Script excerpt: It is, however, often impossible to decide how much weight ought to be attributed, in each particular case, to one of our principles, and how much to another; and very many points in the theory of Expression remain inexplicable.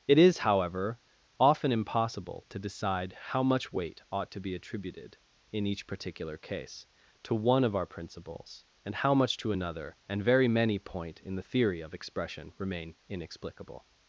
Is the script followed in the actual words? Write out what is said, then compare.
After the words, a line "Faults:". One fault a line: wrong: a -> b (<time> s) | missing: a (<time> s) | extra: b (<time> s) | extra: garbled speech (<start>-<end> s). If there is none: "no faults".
It is, however, often impossible to decide how much weight ought to be attributed, in each particular case, to one of our principles, and how much to another; and very many point in the theory of Expression remain inexplicable.
Faults:
wrong: points -> point (10.8 s)